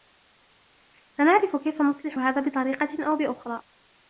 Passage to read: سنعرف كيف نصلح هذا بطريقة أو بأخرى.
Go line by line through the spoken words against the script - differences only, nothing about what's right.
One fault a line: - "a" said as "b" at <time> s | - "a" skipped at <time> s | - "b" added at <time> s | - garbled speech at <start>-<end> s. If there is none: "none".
none